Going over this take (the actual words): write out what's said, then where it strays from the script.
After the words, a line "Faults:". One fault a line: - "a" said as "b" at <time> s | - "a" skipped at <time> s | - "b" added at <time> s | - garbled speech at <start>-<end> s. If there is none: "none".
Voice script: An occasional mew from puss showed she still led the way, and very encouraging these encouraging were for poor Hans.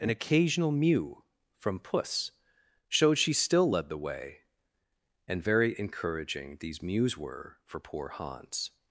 An occasional mew from puss showed she still led the way, and very encouraging these mews were for poor Hans.
Faults:
- "encouraging" said as "mews" at 6.8 s